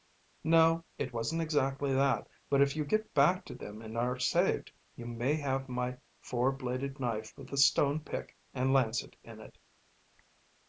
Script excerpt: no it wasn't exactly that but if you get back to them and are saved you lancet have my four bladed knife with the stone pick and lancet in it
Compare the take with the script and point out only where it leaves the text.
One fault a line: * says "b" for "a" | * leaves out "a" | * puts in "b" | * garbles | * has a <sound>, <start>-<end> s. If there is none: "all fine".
* says "may" for "lancet"